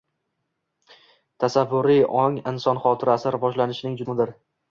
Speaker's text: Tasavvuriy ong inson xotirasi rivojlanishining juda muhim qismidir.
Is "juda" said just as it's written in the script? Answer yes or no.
no